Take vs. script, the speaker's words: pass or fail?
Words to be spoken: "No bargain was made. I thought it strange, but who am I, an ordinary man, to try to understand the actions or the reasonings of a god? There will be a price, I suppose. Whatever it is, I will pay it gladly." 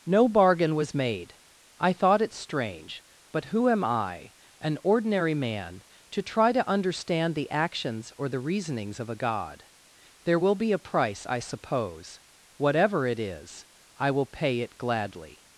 pass